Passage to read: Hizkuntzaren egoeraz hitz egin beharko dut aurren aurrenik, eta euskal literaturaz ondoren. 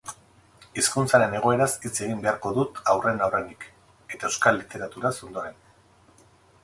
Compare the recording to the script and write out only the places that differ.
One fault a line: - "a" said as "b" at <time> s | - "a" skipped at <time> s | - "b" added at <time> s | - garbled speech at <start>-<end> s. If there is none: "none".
none